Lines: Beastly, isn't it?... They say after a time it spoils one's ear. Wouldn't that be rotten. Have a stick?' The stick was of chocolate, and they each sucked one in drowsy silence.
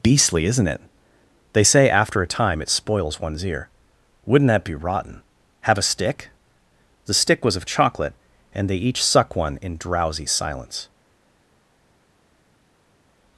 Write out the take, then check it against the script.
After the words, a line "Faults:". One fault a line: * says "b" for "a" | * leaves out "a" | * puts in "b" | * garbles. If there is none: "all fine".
Beastly, isn't it?... They say after a time it spoils one's ear. Wouldn't that be rotten. Have a stick?' The stick was of chocolate, and they each suck one in drowsy silence.
Faults:
* says "suck" for "sucked"